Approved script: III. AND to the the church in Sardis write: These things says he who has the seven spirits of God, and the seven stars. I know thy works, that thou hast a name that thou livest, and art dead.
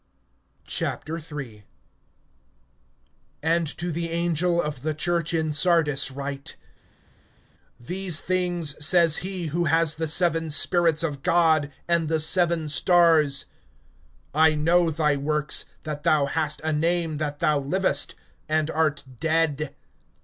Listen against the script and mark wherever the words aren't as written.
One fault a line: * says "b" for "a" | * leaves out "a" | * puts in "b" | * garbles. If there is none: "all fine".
* puts in "angel of"